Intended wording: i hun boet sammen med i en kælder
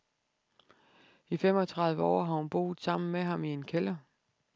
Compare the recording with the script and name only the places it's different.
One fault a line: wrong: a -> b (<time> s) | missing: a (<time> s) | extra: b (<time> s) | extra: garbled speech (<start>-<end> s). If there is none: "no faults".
extra: femogtredive år har (1.4 s)
extra: ham (3.2 s)